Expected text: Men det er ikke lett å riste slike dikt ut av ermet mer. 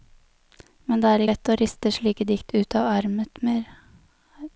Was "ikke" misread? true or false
true